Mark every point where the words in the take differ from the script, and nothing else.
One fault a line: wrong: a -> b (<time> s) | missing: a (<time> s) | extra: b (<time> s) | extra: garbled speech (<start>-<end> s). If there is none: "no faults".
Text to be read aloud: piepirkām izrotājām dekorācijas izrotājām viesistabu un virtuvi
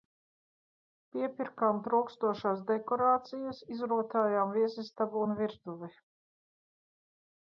wrong: izrotājām -> trūkstošās (1.9 s)